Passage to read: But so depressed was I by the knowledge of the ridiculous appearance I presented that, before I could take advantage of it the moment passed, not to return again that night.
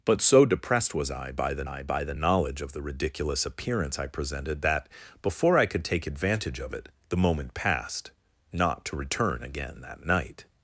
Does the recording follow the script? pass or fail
fail